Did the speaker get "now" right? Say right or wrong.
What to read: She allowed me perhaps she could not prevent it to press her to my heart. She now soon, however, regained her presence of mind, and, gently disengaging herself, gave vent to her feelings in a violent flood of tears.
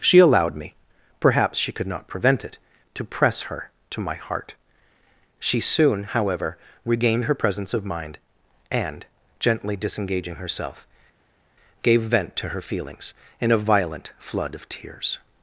wrong